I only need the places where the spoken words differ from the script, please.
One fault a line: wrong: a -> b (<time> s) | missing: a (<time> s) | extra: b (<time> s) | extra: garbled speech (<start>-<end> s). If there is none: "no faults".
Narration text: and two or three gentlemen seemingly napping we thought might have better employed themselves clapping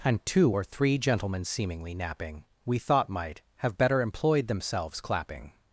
no faults